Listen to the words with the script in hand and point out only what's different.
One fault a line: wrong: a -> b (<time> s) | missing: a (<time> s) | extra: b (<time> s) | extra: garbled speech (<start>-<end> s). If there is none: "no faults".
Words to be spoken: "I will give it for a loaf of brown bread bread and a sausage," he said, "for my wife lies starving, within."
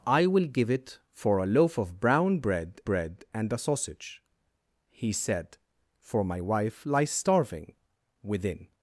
no faults